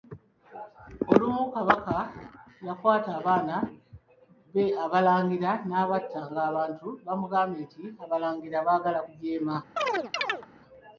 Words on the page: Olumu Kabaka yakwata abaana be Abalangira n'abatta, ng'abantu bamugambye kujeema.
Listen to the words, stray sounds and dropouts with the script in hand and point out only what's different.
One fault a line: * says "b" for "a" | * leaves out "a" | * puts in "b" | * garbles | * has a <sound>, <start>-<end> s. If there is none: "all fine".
* puts in "nti abalangira baagala"
* has a chirp, 9.8-10.5 s